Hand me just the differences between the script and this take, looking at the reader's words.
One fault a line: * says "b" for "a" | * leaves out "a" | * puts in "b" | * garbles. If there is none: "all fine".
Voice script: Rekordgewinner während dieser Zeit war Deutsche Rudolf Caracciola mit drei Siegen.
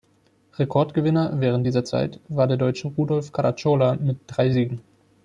* puts in "der"